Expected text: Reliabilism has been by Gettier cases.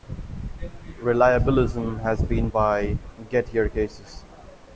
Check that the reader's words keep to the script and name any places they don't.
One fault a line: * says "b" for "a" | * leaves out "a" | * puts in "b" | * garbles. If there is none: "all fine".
all fine